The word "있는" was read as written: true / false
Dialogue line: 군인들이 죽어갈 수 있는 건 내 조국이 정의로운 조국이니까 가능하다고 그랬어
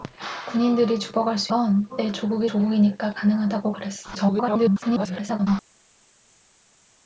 false